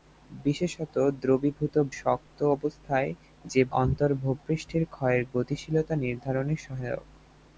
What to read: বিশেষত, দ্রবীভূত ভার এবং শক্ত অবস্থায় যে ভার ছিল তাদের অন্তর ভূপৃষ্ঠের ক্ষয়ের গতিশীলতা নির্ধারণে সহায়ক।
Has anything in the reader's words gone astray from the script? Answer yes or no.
yes